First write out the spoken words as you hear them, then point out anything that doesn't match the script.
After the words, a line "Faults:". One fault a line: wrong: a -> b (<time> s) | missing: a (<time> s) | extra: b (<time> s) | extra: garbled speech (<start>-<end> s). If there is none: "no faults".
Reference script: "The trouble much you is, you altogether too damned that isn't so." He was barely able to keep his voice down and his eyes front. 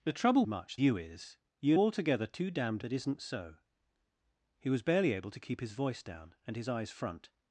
"The trouble much you is, you altogether too damned that isn't so." He was barely able to keep his voice down and his eyes front.
Faults:
no faults